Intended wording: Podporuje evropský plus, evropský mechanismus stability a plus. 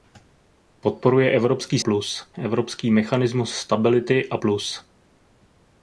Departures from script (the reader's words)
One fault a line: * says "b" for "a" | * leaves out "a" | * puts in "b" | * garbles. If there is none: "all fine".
all fine